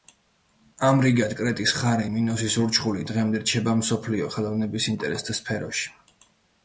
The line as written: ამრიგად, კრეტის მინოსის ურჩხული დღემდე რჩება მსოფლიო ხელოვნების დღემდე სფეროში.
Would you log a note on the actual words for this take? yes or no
yes